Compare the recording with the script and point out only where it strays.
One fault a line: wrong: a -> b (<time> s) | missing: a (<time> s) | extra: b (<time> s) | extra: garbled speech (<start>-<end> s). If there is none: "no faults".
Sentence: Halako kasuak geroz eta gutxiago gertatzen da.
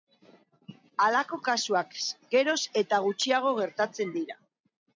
wrong: da -> dira (4.2 s)